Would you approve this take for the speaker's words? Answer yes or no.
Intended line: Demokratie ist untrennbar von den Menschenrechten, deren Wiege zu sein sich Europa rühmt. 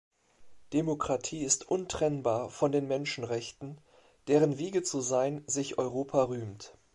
yes